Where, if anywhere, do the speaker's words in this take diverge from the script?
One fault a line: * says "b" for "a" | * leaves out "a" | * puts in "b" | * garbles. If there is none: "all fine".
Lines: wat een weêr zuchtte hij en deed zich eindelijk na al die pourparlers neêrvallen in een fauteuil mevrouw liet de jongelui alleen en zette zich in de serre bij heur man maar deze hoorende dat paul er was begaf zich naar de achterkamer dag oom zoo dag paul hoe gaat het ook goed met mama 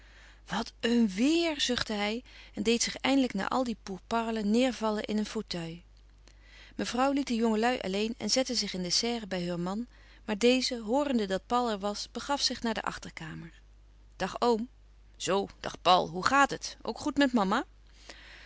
all fine